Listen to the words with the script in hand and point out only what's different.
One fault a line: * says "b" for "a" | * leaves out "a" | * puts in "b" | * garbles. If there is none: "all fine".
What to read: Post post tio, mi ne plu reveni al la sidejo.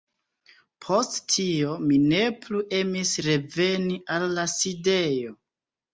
* leaves out "post"
* puts in "emis"